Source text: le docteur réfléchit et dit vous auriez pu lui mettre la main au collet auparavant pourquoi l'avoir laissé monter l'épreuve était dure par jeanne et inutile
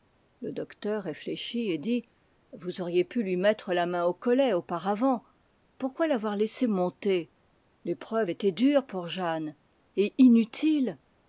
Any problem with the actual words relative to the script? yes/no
yes